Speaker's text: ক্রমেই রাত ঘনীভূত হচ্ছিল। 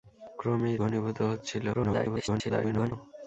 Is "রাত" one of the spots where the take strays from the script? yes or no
yes